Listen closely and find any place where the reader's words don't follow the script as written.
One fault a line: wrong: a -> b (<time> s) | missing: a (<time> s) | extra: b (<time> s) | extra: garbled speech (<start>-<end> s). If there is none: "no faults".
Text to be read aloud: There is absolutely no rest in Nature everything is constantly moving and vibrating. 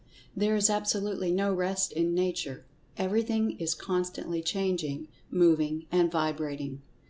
extra: changing (4.4 s)